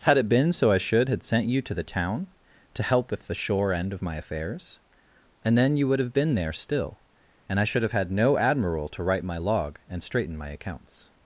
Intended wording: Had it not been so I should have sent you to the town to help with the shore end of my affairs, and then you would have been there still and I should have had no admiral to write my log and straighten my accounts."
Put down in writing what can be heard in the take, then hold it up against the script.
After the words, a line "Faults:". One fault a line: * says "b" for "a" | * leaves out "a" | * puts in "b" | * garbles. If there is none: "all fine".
Had it been so I should had sent you to the town to help with the shore end of my affairs, and then you would have been there still and I should have had no admiral to write my log and straighten my accounts."
Faults:
* leaves out "not"
* says "had" for "have"